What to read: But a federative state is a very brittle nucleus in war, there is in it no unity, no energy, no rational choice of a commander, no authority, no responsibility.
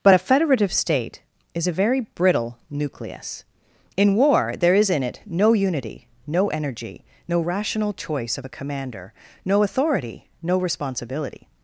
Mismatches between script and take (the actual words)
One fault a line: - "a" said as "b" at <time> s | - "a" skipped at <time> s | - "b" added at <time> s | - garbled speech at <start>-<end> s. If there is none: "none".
none